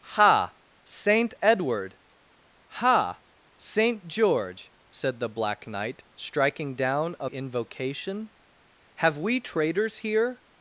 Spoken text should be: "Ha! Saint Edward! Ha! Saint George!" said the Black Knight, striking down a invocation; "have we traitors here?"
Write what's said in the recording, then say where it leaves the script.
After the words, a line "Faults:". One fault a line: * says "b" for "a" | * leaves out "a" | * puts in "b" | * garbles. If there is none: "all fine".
"Ha! Saint Edward! Ha! Saint George!" said the Black Knight, striking down a invocation; "have we traitors here?"
Faults:
all fine